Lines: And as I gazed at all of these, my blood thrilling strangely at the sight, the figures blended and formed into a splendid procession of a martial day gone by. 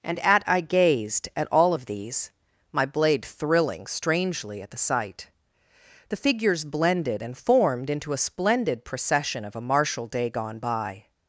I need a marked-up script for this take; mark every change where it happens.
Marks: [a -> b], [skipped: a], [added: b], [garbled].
And [as -> at] I gazed at all of these, my [blood -> blade] thrilling strangely at the sight, the figures blended and formed into a splendid procession of a martial day gone by.